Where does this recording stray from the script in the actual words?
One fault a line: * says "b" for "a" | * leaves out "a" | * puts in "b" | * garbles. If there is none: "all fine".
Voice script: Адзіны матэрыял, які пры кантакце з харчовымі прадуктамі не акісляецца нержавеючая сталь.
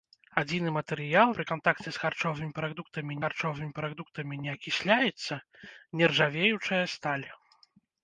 * leaves out "які"
* puts in "харчовымі прадуктамі"